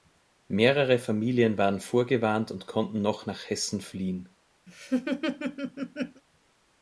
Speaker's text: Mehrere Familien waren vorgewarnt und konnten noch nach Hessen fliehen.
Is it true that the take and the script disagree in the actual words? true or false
false